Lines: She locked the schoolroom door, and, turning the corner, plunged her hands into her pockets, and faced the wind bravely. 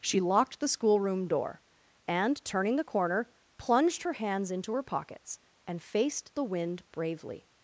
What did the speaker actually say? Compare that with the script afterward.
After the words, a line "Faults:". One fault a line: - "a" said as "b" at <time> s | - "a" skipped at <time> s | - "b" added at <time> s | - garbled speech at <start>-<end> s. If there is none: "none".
She locked the schoolroom door, and, turning the corner, plunged her hands into her pockets, and faced the wind bravely.
Faults:
none